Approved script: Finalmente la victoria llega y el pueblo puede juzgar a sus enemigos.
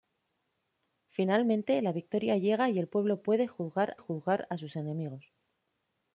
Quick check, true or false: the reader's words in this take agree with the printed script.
false